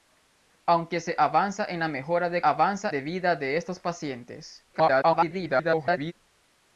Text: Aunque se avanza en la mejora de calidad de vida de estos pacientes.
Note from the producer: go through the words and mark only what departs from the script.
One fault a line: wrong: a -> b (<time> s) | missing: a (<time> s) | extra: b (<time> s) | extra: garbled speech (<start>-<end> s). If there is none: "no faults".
wrong: calidad -> avanza (2.4 s)
extra: garbled speech (4.7-6.1 s)